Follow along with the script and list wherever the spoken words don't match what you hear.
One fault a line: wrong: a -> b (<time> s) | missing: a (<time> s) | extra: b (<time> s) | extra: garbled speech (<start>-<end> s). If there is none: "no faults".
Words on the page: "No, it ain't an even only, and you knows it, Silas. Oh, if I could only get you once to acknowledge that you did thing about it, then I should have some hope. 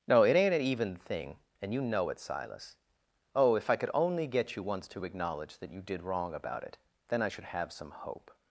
wrong: only -> thing (0.9 s)
wrong: knows -> know (1.8 s)
wrong: thing -> wrong (6.0 s)